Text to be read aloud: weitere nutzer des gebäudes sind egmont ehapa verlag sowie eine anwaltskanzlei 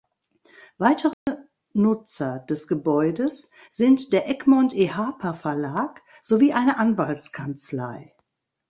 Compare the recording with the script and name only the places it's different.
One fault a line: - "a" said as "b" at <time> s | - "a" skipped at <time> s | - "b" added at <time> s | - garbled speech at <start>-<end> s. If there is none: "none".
- "der" added at 4.1 s